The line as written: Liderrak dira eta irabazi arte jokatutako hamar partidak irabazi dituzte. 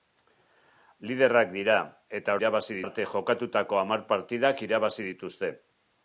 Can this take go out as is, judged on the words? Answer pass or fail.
pass